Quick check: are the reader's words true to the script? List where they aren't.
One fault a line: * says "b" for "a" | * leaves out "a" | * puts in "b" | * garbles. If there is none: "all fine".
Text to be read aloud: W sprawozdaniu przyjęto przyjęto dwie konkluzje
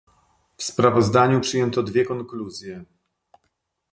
* leaves out "przyjęto"